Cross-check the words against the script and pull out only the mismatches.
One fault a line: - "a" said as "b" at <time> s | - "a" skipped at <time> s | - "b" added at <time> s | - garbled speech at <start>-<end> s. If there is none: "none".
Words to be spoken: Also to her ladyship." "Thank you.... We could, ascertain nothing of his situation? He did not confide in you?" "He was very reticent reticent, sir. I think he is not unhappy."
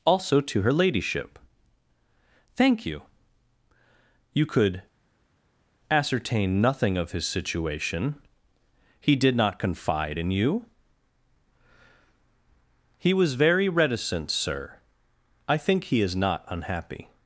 - "We" said as "You" at 4.3 s
- "reticent" skipped at 14.3 s